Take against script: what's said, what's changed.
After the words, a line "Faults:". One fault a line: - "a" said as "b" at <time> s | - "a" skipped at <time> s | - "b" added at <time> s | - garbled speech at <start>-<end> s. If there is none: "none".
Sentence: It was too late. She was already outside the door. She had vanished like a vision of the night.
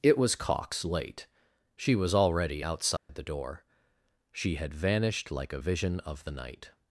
It was cox late. She was already outside the door. She had vanished like a vision of the night.
Faults:
- "too" said as "cox" at 0.3 s